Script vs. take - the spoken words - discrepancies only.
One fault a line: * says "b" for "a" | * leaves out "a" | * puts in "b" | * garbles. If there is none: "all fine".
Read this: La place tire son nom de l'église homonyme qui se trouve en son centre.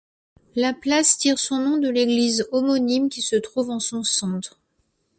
all fine